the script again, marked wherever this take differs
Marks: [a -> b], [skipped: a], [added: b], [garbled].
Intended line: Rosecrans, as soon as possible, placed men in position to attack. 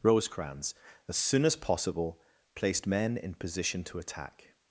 Rosecrans, as soon as possible, placed men in position to attack.